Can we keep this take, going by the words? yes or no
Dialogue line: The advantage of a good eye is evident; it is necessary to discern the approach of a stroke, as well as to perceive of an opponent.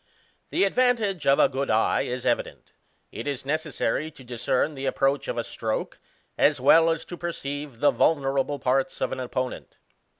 no